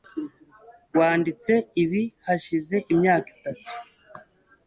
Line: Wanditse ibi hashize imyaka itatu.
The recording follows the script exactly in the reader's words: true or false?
true